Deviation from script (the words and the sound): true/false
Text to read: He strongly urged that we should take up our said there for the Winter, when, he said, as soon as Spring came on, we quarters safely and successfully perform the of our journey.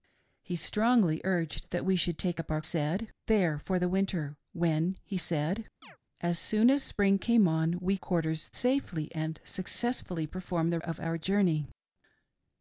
true